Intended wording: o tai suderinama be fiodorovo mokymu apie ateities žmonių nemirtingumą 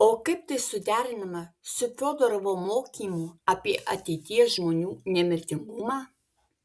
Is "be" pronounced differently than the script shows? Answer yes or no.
yes